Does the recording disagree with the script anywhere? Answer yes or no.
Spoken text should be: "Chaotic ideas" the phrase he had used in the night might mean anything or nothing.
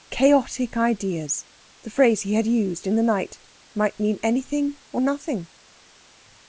no